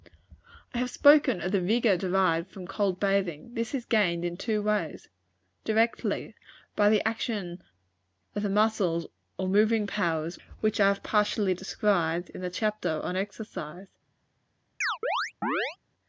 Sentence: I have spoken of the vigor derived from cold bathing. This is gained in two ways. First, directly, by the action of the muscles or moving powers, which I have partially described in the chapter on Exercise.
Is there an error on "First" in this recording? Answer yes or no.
yes